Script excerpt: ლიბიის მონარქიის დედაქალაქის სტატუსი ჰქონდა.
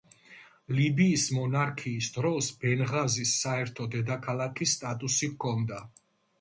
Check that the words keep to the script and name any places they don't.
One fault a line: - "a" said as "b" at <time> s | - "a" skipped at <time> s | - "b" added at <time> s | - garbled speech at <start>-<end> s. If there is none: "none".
- "დროს ბენღაზის საერთო" added at 2.1 s